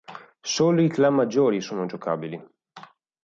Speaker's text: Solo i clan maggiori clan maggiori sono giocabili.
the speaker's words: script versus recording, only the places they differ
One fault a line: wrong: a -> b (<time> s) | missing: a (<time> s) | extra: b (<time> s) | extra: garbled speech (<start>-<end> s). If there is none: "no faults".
missing: clan maggiori (1.6 s)